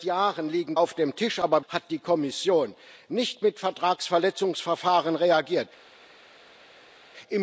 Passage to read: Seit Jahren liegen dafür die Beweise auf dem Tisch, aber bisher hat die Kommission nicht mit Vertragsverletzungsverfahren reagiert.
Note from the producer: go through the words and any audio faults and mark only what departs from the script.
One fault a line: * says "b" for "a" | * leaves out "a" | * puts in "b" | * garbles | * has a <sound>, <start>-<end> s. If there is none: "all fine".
* leaves out "dafür die Beweise"
* leaves out "bisher"